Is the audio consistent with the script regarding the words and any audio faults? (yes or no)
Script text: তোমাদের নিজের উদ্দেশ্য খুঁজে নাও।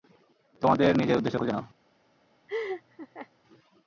no